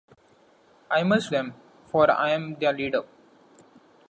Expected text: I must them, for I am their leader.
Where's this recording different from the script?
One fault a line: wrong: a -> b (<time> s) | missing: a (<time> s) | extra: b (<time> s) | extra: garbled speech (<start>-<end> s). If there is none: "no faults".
no faults